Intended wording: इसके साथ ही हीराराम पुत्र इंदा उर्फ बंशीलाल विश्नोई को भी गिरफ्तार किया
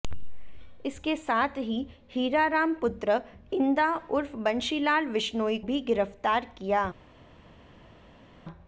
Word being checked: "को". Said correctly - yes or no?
no